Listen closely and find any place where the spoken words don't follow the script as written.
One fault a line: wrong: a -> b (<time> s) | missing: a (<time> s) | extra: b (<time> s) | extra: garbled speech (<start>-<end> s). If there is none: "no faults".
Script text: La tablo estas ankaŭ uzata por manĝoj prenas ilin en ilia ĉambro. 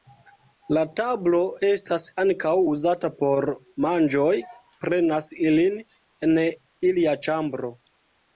no faults